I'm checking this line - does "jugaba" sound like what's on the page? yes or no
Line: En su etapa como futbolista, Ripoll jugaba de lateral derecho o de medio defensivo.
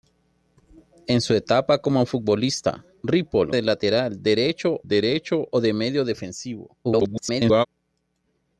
no